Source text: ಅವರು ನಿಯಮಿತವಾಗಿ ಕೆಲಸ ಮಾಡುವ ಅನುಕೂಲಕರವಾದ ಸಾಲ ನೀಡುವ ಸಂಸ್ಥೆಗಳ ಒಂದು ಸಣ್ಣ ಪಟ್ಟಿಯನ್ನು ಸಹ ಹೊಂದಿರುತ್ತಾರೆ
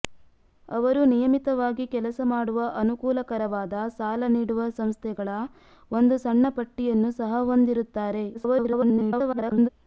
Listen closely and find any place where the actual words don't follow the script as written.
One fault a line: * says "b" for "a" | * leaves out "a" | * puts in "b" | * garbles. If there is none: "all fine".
* garbles